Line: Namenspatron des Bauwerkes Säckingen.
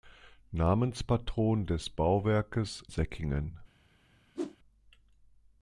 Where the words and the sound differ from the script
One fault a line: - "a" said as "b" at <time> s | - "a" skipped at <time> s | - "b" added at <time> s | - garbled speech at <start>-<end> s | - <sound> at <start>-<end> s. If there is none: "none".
- whoosh at 4.3-4.6 s